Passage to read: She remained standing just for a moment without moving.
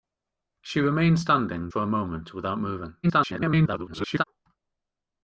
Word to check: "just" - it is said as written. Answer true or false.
false